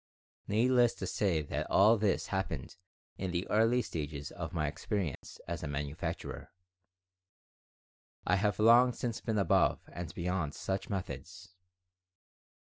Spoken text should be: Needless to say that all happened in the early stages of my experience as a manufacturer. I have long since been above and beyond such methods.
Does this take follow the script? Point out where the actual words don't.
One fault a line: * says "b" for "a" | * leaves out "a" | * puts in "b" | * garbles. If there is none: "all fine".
* puts in "this"